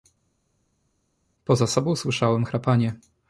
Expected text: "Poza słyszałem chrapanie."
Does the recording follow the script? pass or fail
fail